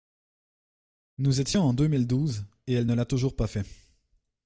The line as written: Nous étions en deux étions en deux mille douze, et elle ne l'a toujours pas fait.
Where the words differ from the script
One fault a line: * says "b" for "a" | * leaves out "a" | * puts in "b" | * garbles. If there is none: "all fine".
* leaves out "étions en deux"